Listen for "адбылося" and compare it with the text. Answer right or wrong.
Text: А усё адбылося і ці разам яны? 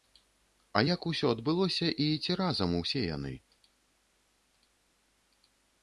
right